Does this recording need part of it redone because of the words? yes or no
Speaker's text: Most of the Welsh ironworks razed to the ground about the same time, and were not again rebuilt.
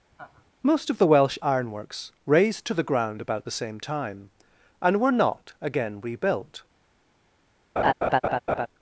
no